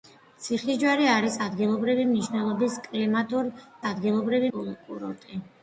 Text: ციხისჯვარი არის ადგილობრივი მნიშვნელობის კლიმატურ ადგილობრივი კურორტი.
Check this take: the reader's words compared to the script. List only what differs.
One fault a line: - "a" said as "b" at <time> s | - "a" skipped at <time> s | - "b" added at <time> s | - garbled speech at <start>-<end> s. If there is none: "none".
none